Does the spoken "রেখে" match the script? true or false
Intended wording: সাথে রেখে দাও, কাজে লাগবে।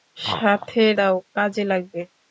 false